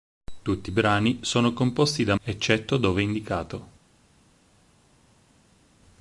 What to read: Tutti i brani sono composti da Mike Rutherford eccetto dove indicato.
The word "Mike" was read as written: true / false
false